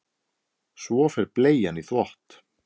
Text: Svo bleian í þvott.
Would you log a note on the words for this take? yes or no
yes